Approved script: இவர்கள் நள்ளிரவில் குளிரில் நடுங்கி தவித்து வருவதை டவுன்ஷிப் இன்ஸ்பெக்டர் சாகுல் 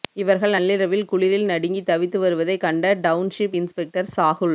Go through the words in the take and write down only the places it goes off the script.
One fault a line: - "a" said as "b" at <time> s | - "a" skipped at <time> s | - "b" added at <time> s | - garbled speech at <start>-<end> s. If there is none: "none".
- "கண்ட" added at 2.6 s